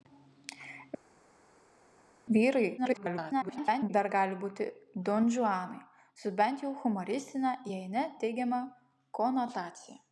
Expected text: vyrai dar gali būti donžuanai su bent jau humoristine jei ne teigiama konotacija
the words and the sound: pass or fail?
fail